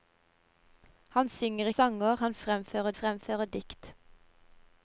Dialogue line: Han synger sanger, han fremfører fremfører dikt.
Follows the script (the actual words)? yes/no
yes